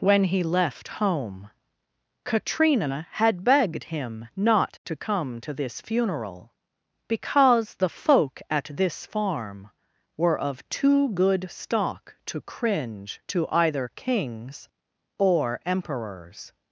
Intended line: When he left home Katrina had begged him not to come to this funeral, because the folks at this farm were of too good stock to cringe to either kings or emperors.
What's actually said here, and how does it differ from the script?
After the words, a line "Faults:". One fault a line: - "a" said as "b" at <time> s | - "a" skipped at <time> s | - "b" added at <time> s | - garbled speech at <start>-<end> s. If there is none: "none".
When he left home Katrina had begged him not to come to this funeral, because the folk at this farm were of too good stock to cringe to either kings or emperors.
Faults:
- "folks" said as "folk" at 7.9 s